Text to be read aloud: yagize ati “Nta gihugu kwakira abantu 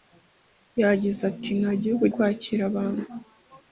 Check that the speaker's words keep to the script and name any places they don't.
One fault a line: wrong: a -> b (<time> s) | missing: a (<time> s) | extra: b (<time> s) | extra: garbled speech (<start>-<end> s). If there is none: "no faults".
no faults